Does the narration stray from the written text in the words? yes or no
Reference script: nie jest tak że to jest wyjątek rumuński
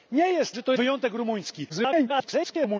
yes